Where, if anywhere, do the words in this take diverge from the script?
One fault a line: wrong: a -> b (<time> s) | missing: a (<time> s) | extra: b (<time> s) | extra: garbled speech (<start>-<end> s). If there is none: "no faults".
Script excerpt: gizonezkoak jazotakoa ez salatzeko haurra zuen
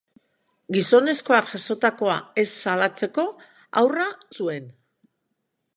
no faults